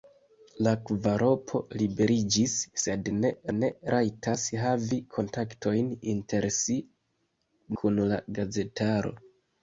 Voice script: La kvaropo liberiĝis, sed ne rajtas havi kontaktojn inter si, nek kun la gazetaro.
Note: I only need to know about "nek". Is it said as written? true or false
false